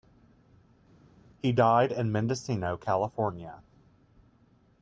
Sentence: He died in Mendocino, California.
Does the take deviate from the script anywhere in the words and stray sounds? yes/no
no